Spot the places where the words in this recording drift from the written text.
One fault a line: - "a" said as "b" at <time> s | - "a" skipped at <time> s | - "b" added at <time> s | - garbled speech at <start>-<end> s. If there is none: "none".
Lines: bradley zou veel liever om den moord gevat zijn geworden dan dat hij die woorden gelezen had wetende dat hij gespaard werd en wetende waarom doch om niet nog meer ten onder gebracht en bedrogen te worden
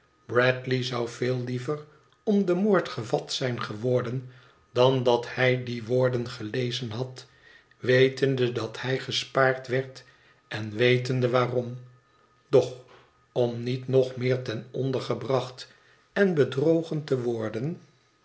none